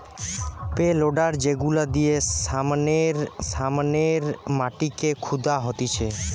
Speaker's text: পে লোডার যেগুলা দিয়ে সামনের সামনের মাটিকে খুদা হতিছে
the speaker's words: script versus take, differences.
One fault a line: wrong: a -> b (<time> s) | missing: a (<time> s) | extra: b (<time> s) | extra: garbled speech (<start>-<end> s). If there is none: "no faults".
no faults